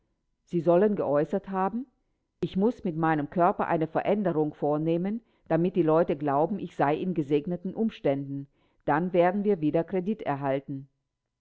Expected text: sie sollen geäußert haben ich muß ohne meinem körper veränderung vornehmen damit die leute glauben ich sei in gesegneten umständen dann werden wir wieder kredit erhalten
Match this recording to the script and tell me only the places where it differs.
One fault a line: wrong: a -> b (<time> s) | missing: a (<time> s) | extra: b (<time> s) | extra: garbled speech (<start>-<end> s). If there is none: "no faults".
wrong: ohne -> mit (2.8 s)
extra: eine (3.7 s)